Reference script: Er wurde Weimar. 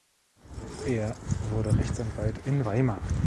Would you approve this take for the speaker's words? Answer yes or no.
no